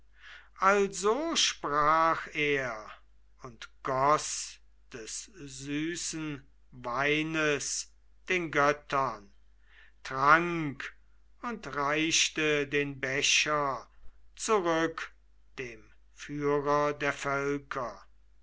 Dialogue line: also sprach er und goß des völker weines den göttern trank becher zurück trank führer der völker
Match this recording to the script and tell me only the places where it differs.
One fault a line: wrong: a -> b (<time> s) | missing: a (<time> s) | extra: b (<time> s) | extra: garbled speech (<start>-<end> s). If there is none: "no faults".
wrong: völker -> süßen (5.2 s)
extra: und reichte den (11.4 s)
wrong: trank -> dem (15.6 s)